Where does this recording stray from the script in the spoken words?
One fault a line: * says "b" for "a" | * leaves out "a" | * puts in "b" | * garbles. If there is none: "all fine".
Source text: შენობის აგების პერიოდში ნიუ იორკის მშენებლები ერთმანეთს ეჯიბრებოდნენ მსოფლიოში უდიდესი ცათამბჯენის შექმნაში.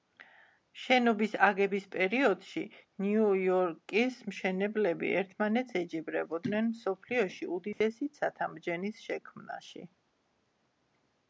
all fine